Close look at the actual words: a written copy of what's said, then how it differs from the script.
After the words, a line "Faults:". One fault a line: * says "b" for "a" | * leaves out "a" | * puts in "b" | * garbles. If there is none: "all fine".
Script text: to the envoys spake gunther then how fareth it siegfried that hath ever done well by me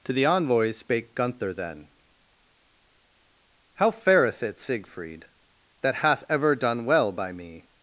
to the envoys spake gunther then how fareth it siegfried that hath ever done well by me
Faults:
all fine